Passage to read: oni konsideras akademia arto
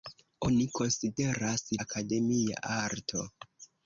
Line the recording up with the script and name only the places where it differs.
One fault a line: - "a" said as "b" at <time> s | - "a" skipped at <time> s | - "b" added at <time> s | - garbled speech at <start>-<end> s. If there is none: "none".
none